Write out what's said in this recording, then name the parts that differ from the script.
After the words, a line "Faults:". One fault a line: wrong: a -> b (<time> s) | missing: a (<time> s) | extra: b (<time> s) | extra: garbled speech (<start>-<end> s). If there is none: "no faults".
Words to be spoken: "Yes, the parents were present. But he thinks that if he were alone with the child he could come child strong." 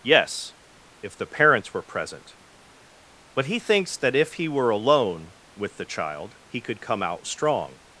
"Yes, if the parents were present. But he thinks that if he were alone with the child he could come out strong."
Faults:
extra: if (1.0 s)
wrong: child -> out (7.0 s)